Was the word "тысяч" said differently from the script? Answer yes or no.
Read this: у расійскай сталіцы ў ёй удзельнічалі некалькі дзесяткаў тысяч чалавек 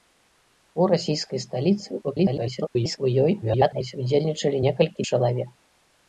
yes